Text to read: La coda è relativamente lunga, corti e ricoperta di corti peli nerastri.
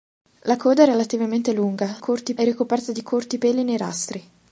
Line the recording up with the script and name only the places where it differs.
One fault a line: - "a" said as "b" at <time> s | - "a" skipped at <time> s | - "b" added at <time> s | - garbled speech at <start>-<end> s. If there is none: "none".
none